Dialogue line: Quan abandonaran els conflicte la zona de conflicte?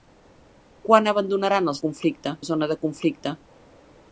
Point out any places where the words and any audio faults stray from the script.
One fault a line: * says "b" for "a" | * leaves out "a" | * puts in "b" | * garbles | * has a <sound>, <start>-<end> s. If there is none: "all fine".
all fine